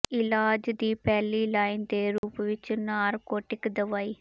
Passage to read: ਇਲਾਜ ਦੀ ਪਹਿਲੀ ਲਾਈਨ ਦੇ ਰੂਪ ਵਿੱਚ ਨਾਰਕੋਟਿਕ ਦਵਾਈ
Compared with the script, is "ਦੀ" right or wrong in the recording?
right